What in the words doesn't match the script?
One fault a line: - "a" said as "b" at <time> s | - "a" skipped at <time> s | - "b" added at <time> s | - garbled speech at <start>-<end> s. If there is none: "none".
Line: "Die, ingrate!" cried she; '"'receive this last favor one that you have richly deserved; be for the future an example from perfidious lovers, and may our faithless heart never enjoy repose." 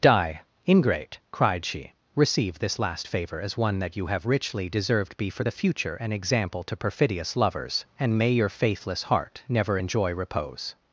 - "as" added at 3.4 s
- "from" said as "to" at 6.6 s
- "our" said as "your" at 8.3 s